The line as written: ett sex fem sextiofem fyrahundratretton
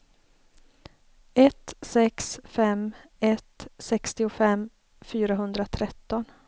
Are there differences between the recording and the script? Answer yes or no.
yes